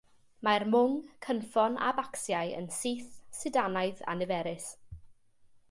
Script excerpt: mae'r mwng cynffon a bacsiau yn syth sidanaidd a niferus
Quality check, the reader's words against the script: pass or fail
pass